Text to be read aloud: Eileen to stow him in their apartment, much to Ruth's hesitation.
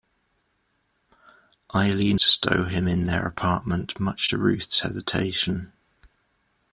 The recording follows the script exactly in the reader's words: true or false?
true